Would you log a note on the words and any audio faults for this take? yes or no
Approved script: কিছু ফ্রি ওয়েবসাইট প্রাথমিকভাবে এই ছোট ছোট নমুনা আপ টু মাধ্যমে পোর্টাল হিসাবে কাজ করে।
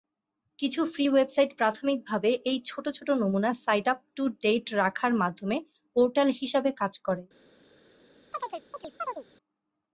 yes